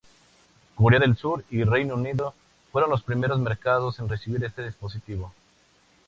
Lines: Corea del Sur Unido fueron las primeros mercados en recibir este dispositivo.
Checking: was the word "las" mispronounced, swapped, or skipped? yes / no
yes